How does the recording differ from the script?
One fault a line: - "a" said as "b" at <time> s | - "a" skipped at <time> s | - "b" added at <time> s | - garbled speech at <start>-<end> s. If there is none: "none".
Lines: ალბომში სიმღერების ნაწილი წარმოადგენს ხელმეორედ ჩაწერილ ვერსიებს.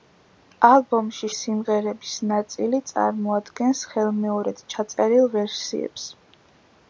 none